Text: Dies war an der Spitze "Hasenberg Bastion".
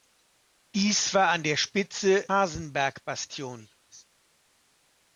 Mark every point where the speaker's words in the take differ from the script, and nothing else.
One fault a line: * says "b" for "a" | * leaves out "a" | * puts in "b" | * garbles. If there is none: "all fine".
all fine